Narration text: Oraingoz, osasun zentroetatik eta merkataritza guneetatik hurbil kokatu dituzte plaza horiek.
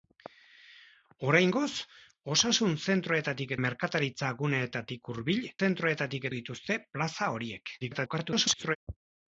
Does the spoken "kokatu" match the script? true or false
false